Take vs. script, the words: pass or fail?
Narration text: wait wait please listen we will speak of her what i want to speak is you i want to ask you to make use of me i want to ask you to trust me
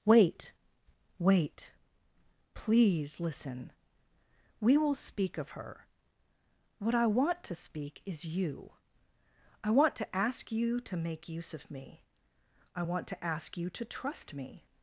pass